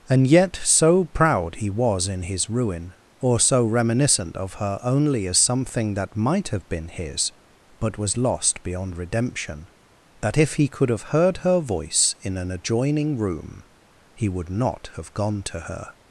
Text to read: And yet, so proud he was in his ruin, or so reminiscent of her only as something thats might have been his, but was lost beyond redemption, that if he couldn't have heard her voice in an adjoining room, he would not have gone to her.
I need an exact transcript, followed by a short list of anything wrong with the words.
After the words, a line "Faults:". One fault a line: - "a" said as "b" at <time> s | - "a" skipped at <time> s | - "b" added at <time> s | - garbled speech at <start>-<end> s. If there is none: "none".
And yet, so proud he was in his ruin, or so reminiscent of her only as something that might have been his, but was lost beyond redemption, that if he could have heard her voice in an adjoining room, he would not have gone to her.
Faults:
- "thats" said as "that" at 5.9 s
- "couldn't" said as "could" at 10.7 s